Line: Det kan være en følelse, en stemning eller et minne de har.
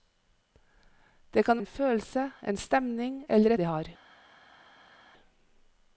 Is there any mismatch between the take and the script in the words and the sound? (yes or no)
yes